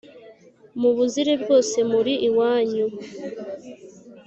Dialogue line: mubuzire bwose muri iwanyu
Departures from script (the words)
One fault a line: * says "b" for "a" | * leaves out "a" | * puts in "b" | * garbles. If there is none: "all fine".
all fine